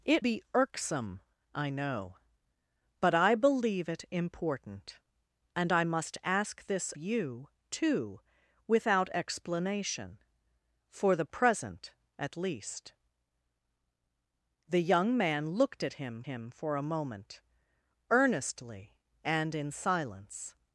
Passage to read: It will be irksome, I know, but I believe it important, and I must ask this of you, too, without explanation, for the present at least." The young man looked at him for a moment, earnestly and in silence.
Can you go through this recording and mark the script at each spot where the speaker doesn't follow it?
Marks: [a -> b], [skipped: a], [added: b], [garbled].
It [skipped: will] be irksome, I know, but I believe it important, and I must ask this [skipped: of] you, too, without explanation, for the present at least." The young man looked at him [added: him] for a moment, earnestly and in silence.